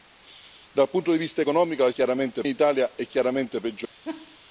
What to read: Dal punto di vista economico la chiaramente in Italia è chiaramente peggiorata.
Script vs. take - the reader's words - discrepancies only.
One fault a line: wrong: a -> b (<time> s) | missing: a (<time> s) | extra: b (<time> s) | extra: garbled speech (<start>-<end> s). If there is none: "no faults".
no faults